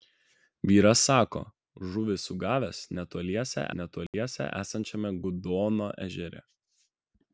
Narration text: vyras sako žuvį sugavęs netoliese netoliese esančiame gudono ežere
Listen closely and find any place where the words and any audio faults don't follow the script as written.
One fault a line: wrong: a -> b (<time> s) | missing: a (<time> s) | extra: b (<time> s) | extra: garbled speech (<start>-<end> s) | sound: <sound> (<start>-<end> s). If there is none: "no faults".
sound: dropout (4.1-4.1 s)